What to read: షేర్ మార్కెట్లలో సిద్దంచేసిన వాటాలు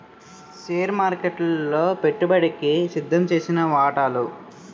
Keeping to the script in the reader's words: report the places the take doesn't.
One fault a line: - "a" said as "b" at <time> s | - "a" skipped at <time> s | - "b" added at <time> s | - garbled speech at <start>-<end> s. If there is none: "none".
- "పెట్టుబడికి" added at 2.0 s